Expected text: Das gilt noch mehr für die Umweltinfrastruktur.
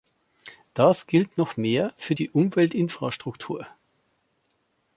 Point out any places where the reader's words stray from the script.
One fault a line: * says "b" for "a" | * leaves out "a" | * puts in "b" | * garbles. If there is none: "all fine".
all fine